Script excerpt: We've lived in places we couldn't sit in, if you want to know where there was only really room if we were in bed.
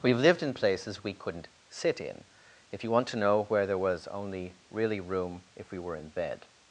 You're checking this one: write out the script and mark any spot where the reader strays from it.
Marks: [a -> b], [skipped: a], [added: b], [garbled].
We've lived in places we couldn't sit in, if you want to know where there was only really room if we were in bed.